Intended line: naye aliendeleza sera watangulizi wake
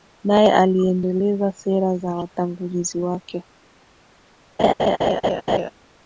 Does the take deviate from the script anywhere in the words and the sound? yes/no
yes